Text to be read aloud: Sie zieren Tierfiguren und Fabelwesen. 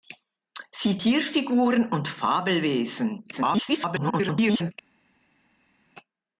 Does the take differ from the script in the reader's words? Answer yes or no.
yes